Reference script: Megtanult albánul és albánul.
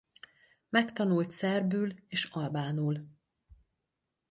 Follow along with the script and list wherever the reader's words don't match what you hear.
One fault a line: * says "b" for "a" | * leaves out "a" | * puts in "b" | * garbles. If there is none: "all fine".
* says "szerbül" for "albánul"